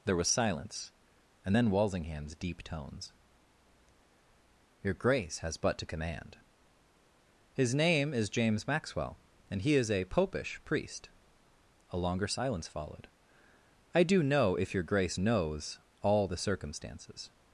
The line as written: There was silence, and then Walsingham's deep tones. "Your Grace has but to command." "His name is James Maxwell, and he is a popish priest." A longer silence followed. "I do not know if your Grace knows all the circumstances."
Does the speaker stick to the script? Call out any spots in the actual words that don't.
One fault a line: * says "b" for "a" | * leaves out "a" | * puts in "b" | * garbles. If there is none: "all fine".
* leaves out "not"